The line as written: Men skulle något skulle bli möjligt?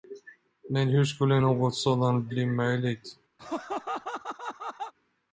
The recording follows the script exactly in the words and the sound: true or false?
false